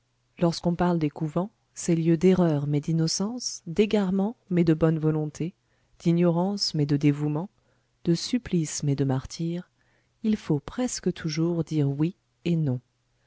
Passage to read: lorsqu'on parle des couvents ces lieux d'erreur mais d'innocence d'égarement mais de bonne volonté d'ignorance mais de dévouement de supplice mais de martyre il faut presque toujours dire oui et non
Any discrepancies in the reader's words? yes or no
no